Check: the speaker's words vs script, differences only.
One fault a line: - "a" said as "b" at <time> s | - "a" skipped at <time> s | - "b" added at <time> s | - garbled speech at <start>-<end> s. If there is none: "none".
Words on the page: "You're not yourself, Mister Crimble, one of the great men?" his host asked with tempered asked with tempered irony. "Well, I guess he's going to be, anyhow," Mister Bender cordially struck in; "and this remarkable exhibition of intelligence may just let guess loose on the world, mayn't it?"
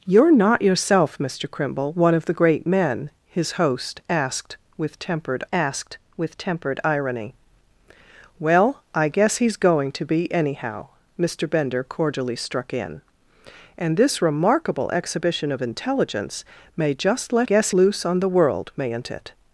none